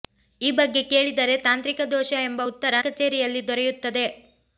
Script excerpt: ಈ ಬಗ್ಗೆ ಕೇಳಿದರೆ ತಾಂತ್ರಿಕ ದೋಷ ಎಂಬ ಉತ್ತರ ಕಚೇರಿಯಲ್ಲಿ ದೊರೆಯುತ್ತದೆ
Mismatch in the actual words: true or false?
false